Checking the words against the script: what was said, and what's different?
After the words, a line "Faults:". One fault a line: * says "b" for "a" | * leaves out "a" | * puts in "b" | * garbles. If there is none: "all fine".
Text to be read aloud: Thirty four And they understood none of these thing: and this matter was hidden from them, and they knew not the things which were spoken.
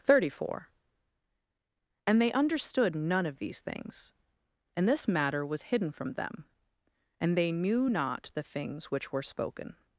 Thirty four And they understood none of these things: and this matter was hidden from them, and they knew not the things which were spoken.
Faults:
* says "things" for "thing"